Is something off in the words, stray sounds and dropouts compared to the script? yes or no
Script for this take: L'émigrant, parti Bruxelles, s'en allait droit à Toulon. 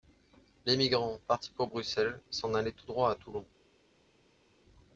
yes